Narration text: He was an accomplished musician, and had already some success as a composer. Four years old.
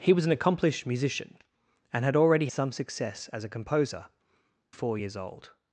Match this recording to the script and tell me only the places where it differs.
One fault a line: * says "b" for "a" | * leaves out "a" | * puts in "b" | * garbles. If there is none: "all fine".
all fine